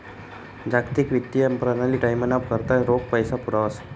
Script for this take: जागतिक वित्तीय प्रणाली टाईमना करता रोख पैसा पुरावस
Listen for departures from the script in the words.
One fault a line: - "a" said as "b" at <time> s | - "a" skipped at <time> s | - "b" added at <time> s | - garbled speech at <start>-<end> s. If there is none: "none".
none